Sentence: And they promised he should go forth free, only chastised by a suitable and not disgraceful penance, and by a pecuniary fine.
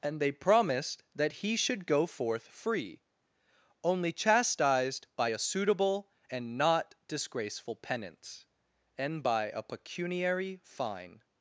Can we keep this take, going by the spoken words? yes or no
no